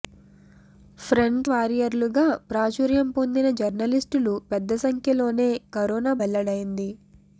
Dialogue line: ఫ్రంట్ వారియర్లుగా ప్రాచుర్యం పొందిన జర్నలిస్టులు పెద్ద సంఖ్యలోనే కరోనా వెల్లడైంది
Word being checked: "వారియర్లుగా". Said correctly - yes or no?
yes